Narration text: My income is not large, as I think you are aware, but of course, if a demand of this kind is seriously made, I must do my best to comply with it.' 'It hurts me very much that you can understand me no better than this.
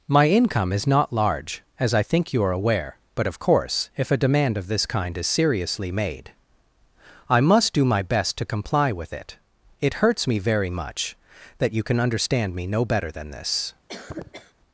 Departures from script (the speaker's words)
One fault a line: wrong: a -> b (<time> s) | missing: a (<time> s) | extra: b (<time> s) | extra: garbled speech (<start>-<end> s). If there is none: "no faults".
no faults